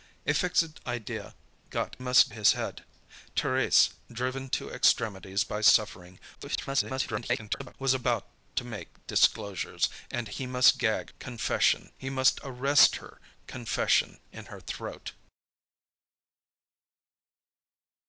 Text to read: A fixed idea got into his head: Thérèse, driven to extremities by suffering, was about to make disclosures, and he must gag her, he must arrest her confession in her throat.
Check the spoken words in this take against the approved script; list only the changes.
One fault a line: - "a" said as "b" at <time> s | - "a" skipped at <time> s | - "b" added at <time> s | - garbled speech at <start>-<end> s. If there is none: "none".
- "into" said as "must" at 2.0 s
- garbled speech at 6.3-7.7 s
- "her" said as "confession" at 11.2 s